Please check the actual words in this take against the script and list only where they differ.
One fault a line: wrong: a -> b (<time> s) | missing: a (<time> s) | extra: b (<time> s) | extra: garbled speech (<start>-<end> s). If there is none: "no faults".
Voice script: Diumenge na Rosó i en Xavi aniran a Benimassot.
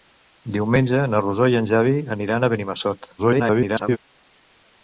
extra: garbled speech (3.2-4.0 s)